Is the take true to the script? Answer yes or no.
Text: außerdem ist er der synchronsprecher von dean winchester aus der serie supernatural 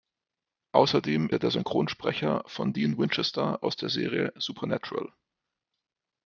no